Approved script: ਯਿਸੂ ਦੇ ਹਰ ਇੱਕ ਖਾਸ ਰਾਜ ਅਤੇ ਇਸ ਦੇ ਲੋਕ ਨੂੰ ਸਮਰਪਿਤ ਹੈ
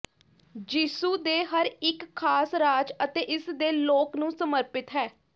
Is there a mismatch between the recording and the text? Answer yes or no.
no